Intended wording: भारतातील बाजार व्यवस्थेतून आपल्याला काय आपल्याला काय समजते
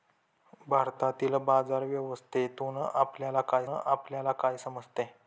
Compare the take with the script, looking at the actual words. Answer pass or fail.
pass